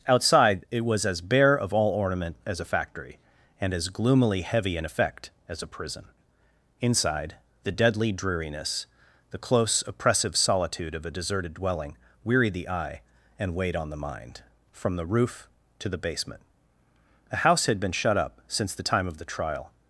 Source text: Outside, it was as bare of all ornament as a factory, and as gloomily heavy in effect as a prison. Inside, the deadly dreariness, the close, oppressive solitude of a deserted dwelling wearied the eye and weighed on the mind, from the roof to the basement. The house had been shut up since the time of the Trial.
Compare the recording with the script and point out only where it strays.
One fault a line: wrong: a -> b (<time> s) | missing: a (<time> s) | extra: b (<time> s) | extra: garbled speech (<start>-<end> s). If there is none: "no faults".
wrong: The -> A (17.3 s)